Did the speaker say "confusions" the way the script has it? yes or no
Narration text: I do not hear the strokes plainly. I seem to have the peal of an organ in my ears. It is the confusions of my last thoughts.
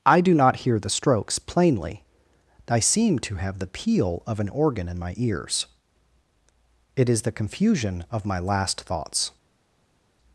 no